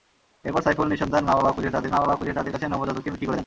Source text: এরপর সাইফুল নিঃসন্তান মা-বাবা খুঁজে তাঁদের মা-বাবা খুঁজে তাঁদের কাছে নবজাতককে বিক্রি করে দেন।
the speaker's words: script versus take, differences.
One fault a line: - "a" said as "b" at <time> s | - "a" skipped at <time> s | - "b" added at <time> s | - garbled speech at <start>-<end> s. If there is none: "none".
none